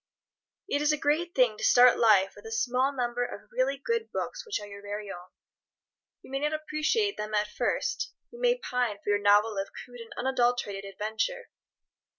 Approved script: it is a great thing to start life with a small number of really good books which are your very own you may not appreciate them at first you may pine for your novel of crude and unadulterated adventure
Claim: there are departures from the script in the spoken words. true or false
false